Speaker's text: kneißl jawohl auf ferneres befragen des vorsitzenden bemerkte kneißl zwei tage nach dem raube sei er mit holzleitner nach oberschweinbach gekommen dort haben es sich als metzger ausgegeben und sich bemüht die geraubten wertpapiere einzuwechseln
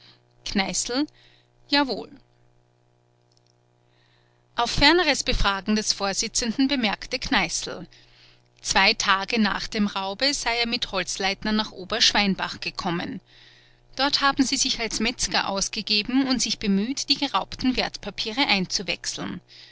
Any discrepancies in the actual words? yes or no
yes